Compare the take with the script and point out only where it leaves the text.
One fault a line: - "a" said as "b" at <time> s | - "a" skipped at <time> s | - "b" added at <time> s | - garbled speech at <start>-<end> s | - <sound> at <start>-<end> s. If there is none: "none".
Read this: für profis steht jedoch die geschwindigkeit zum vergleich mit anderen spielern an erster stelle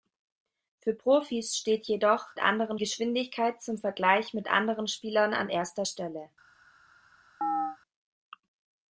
- "die" said as "anderen" at 2.4 s
- chirp at 7.4-7.8 s